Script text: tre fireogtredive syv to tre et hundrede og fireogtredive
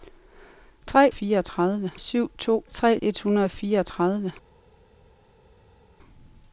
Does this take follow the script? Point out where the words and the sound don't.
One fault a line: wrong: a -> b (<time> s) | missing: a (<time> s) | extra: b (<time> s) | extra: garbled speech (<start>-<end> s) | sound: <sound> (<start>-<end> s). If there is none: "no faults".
no faults